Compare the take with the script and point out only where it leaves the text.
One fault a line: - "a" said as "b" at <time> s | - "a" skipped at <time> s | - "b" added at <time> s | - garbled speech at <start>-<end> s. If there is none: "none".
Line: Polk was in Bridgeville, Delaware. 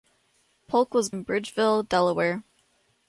none